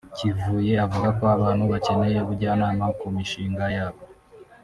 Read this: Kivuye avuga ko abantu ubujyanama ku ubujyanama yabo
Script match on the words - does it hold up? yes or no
no